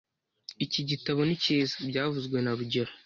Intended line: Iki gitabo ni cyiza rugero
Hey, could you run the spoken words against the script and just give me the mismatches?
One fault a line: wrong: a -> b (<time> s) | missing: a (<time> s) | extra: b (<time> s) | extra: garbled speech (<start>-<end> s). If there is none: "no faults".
extra: byavuzwe na (1.9 s)